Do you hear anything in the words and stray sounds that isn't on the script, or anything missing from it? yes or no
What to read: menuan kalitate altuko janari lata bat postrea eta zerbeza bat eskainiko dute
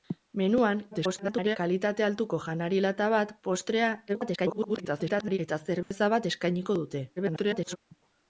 yes